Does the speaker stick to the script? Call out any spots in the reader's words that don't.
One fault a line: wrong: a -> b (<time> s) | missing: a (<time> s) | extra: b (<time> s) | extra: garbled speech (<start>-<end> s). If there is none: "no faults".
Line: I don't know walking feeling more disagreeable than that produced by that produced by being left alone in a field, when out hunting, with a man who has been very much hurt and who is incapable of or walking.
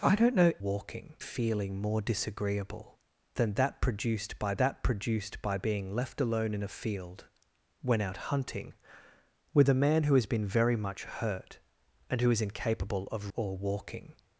no faults